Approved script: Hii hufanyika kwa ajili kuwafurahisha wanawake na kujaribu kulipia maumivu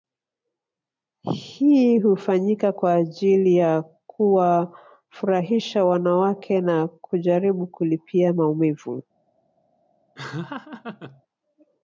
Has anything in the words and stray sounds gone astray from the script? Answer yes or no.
yes